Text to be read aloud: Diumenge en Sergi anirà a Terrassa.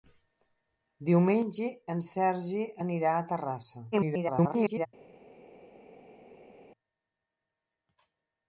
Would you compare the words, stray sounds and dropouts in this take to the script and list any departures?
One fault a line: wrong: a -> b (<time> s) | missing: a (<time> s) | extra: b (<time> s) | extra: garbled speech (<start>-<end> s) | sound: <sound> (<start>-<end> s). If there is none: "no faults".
extra: garbled speech (3.9-4.9 s)